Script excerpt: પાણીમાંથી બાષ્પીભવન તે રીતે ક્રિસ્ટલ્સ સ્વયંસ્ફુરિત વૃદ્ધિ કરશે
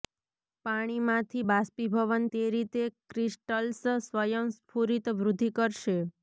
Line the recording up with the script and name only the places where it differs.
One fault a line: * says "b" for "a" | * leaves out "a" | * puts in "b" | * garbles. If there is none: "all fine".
all fine